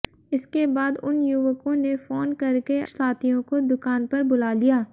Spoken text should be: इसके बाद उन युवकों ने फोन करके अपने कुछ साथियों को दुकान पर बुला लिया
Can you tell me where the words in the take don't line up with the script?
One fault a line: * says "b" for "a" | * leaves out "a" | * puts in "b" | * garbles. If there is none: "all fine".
* leaves out "अपने कुछ"